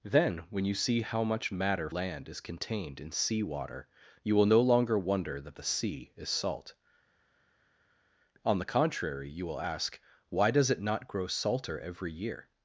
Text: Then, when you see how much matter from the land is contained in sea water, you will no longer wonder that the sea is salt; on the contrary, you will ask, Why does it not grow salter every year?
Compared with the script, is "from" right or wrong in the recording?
wrong